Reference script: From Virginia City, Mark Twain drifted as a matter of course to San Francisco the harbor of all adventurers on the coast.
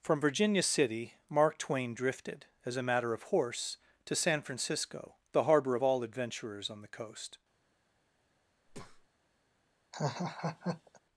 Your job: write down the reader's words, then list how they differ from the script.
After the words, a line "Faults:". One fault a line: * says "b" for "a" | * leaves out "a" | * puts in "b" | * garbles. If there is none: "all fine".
From Virginia City, Mark Twain drifted as a matter of horse to San Francisco the harbor of all adventurers on the coast.
Faults:
* says "horse" for "course"